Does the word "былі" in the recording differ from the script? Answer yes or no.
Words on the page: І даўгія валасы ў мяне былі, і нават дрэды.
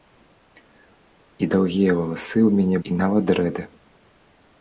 yes